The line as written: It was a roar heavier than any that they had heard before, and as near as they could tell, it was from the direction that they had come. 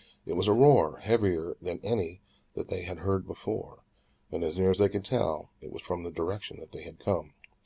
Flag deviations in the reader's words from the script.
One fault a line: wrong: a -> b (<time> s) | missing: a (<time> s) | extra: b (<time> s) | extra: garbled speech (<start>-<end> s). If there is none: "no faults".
no faults